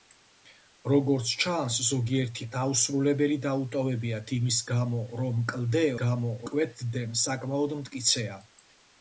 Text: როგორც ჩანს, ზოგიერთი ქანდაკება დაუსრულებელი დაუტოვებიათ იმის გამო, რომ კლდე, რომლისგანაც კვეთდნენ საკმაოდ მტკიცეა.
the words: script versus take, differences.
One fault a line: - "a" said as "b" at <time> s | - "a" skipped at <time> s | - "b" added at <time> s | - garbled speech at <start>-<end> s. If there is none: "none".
- "ქანდაკება" skipped at 2.5 s
- "რომლისგანაც" said as "გამო" at 6.0 s